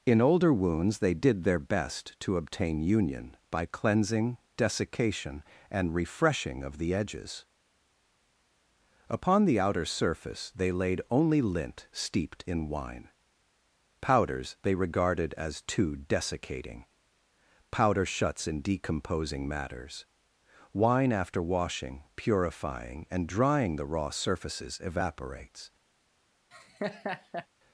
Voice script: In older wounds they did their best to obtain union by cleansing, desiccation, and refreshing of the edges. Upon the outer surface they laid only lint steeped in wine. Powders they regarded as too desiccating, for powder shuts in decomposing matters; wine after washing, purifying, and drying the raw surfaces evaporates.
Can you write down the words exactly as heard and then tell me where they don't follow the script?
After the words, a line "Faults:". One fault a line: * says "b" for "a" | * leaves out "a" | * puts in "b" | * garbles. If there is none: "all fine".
In older wounds they did their best to obtain union by cleansing, desiccation, and refreshing of the edges. Upon the outer surface they laid only lint steeped in wine. Powders they regarded as too desiccating, powder shuts in decomposing matters; wine after washing, purifying, and drying the raw surfaces evaporates.
Faults:
* leaves out "for"